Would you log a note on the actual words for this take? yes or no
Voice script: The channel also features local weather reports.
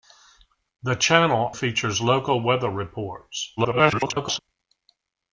yes